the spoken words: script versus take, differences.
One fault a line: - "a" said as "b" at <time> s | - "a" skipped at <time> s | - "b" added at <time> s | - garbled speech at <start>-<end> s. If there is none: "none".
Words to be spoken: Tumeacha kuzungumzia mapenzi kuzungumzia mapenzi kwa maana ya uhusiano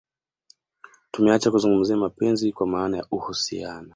- "kuzungumzia mapenzi" skipped at 2.5 s